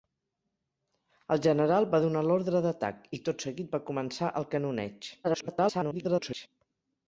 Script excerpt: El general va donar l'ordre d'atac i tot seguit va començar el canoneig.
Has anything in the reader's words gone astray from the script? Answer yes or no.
yes